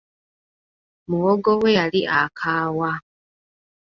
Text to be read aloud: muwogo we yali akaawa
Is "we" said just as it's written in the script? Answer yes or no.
yes